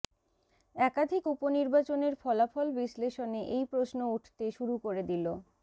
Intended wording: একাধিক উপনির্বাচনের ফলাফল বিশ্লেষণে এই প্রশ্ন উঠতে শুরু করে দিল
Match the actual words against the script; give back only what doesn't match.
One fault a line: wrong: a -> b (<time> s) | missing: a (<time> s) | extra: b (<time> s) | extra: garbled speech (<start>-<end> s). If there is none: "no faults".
no faults